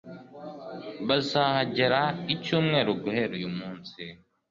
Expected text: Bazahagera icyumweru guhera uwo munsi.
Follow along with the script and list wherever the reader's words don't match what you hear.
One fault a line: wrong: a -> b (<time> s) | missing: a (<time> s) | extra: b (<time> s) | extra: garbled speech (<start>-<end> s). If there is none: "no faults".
wrong: uwo -> uyu (3.4 s)